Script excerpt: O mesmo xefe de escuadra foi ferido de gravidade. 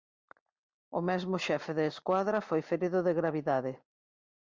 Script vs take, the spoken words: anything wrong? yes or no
no